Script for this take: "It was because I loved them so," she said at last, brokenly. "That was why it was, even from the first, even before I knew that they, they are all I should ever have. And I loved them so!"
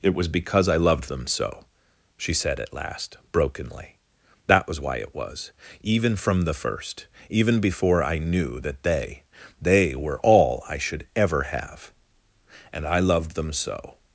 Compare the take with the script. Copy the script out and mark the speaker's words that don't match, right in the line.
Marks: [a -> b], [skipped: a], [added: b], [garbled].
"It was because I loved them so," she said at last, brokenly. "That was why it was, even from the first, even before I knew that they, they [are -> were] all I should ever have. And I loved them so!"